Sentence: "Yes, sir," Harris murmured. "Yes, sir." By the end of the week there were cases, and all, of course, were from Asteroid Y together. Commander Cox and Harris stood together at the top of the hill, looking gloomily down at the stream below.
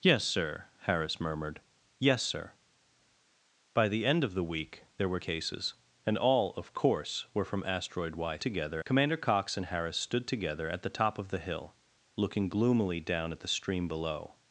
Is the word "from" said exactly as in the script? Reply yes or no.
yes